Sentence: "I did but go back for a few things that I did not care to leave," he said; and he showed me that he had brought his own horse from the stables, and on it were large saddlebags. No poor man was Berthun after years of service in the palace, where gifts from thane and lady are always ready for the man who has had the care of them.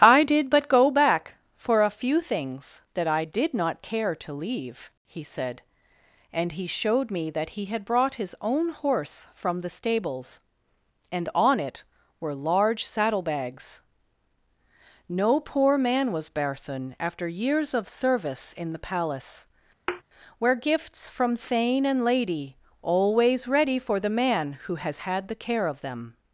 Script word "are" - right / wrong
wrong